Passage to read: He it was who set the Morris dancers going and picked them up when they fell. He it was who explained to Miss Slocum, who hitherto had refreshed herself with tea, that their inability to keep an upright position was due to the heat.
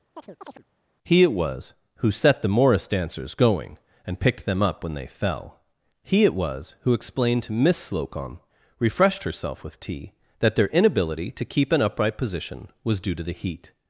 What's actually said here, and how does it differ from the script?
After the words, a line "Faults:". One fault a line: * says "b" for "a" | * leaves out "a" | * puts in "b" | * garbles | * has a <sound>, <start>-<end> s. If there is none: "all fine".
He it was who set the Morris dancers going and picked them up when they fell. He it was who explained to Miss Slocum, refreshed herself with tea, that their inability to keep an upright position was due to the heat.
Faults:
* has a chirp, 0.2-0.6 s
* leaves out "who hitherto had"